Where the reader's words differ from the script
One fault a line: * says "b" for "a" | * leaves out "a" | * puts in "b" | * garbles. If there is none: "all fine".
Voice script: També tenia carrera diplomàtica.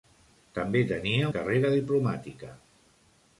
all fine